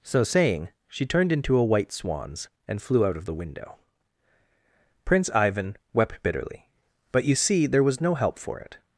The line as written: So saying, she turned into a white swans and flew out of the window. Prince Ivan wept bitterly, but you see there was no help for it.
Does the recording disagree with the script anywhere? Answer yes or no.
no